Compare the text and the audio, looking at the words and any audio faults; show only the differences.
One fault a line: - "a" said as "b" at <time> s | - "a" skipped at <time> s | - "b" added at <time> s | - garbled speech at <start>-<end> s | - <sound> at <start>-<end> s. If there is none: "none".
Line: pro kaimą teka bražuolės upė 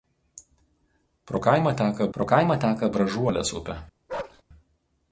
- "pro kaimą teka" added at 2.2 s
- bark at 4.1-4.4 s